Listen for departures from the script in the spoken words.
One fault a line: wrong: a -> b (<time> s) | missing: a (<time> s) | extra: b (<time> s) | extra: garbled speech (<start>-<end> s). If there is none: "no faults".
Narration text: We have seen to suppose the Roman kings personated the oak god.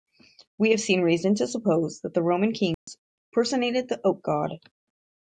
extra: reason (1.0 s)
extra: that (2.0 s)